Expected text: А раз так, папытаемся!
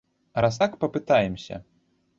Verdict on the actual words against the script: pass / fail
pass